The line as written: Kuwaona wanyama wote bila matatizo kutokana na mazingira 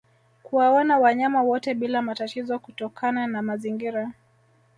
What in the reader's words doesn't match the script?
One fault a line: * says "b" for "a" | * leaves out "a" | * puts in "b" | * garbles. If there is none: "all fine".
all fine